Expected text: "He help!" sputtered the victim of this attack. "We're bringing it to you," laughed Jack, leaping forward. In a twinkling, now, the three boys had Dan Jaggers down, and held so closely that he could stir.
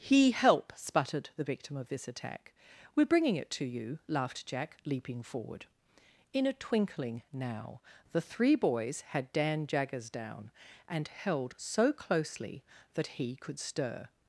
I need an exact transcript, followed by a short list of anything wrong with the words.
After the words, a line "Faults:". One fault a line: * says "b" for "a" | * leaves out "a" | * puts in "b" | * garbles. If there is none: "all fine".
"He help!" sputtered the victim of this attack. "We're bringing it to you," laughed Jack, leaping forward. In a twinkling, now, the three boys had Dan Jaggers down, and held so closely that he could stir.
Faults:
all fine